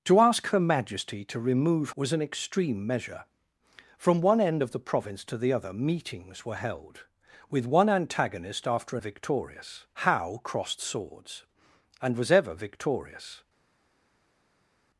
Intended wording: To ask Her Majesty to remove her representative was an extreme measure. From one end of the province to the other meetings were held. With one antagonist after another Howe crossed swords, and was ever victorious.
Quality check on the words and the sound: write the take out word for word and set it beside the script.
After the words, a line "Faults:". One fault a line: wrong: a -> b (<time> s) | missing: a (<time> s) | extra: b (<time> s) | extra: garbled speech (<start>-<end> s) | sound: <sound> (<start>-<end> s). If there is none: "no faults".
To ask Her Majesty to remove was an extreme measure. From one end of the province to the other meetings were held. With one antagonist after victorious Howe crossed swords, and was ever victorious.
Faults:
missing: her representative (1.9 s)
wrong: another -> victorious (9.0 s)